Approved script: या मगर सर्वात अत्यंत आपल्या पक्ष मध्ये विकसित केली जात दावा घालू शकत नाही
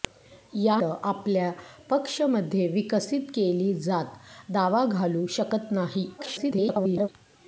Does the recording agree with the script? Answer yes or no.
no